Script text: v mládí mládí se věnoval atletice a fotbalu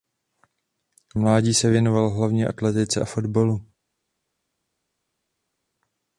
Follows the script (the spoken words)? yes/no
no